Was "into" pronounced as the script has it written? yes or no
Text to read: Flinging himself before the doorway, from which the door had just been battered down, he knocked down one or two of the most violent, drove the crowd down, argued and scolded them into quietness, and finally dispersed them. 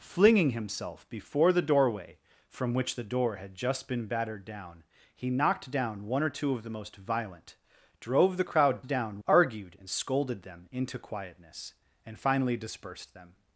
yes